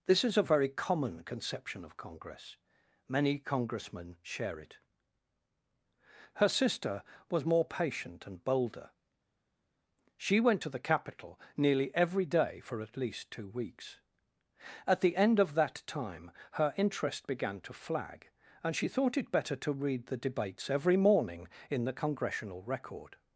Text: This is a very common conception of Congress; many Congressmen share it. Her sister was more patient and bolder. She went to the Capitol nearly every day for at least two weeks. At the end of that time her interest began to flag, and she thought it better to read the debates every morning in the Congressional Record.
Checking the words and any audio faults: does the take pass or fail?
pass